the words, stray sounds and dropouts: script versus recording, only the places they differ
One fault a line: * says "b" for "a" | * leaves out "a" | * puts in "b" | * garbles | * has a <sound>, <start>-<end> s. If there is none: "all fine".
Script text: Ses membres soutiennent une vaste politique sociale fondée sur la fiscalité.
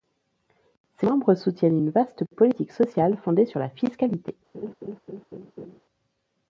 * has a laugh, 4.5-5.8 s